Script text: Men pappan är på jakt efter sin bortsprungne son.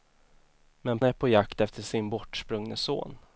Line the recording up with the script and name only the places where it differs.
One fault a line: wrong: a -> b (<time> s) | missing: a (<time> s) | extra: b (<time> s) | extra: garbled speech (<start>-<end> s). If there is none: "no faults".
missing: pappan (1.0 s)